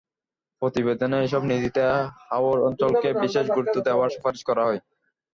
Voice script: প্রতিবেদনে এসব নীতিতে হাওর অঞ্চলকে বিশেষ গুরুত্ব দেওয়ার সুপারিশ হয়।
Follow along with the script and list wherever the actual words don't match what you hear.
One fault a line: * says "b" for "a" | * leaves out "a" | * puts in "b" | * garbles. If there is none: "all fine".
* puts in "করা"